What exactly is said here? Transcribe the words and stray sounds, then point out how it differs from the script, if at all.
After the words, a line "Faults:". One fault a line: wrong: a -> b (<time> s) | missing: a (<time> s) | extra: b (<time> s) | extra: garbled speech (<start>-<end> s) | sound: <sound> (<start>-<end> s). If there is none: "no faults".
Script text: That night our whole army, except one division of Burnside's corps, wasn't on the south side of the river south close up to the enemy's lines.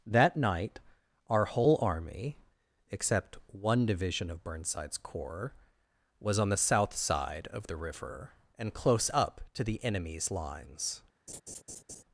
That night our whole army, except one division of Burnside's corps, was on the south side of the river and close up to the enemy's lines.
Faults:
wrong: wasn't -> was (6.2 s)
wrong: south -> and (8.6 s)
sound: laugh (11.3-12.0 s)